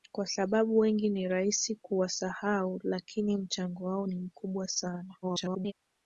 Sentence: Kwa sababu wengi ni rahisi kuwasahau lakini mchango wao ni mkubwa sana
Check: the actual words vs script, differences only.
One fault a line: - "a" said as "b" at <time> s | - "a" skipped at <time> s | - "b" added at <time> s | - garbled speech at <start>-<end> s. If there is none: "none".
- garbled speech at 5.2-5.7 s